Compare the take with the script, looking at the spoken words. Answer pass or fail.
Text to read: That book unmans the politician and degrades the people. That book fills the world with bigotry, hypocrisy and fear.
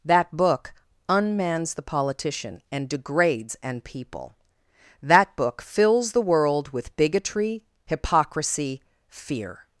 fail